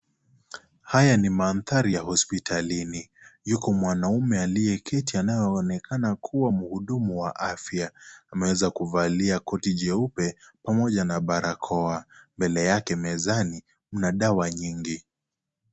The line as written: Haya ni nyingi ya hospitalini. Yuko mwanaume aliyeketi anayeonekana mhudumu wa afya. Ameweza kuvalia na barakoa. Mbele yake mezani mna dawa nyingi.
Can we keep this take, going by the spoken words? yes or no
no